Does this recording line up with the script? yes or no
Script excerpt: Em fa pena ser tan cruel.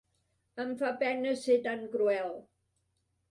yes